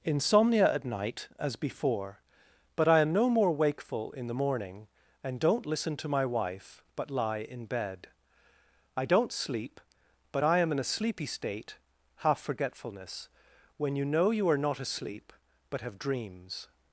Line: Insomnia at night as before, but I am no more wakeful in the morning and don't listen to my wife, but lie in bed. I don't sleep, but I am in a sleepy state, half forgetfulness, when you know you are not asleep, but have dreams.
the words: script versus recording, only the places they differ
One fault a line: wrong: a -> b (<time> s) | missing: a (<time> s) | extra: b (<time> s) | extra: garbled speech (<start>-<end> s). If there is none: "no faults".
no faults